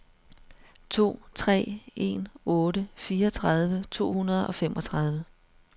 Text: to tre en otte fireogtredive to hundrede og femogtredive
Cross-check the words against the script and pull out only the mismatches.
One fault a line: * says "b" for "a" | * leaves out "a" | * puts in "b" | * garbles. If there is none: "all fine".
all fine